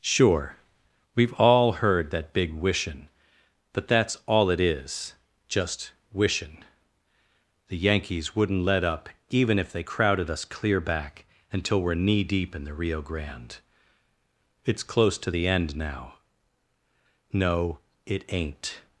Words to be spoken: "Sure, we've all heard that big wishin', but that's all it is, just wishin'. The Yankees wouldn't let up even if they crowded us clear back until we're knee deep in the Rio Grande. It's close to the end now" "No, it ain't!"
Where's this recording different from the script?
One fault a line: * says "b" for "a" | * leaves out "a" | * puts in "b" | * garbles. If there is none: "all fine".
all fine